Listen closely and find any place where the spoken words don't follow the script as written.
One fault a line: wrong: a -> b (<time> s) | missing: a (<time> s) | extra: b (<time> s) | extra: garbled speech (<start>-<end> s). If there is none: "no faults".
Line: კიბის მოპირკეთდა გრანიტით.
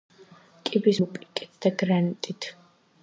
no faults